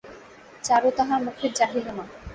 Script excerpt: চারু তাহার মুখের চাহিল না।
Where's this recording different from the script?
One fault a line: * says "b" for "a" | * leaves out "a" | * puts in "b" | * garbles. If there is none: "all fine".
all fine